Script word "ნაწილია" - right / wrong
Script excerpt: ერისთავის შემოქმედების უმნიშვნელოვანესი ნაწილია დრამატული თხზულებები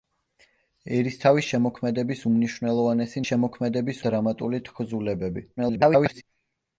wrong